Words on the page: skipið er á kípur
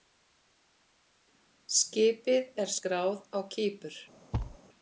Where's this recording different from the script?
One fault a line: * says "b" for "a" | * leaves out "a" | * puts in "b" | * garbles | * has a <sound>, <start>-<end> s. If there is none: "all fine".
* puts in "skráð"
* has a thud, 4.3-4.6 s